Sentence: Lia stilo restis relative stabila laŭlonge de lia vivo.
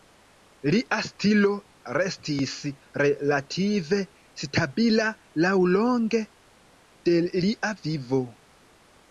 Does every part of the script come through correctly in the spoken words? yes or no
yes